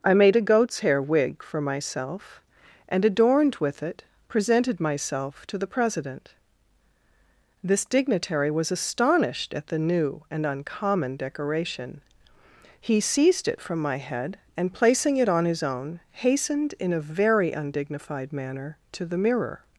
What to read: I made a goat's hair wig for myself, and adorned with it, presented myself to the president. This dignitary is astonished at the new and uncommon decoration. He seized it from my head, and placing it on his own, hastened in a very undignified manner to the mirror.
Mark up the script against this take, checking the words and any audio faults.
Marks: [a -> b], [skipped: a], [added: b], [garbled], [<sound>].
I made a goat's hair wig for myself, and adorned with it, presented myself to the president. This dignitary [is -> was] astonished at the new and uncommon decoration. He seized it from my head, and placing it on his own, hastened in a very undignified manner to the mirror.